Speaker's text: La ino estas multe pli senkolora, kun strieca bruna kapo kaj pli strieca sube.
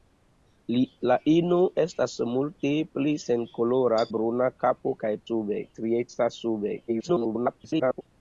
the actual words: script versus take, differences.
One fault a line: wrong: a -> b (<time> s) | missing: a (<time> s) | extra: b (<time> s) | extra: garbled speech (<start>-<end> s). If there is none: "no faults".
missing: kun strieca (4.0 s)
wrong: pli -> sube (5.3 s)
extra: garbled speech (6.9-8.0 s)